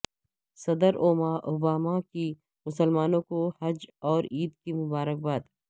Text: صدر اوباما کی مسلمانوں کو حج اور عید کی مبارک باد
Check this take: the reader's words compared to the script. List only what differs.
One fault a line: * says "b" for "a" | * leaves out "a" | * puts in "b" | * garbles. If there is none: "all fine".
all fine